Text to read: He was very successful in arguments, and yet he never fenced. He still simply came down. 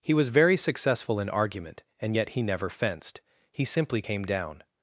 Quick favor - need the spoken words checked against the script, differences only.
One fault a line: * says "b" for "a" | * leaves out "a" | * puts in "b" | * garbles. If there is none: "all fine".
* says "argument" for "arguments"
* leaves out "still"